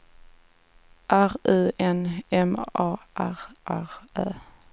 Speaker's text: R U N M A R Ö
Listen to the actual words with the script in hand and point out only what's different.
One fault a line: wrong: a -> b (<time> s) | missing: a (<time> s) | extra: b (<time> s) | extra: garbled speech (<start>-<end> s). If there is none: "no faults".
extra: R (3.7 s)